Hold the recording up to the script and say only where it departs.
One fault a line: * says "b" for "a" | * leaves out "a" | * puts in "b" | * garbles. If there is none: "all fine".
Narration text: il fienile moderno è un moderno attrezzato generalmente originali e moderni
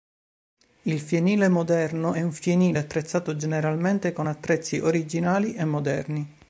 * says "fienile" for "moderno"
* puts in "con attrezzi"